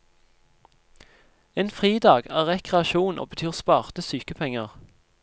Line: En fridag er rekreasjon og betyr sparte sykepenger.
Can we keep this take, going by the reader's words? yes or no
yes